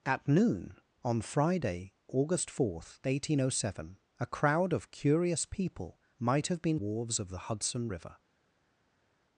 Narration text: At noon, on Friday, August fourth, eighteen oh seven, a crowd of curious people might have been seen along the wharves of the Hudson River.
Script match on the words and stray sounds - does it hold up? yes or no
no